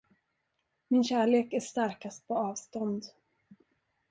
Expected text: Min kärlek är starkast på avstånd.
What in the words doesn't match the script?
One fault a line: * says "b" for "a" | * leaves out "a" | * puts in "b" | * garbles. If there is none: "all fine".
all fine